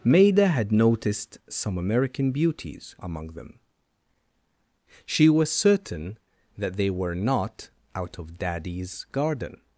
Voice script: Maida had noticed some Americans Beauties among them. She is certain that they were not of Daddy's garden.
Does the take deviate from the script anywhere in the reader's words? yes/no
yes